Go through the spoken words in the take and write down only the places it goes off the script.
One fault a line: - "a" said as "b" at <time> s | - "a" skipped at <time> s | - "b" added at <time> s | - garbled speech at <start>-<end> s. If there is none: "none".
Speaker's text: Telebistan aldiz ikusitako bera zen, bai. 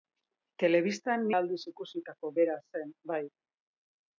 none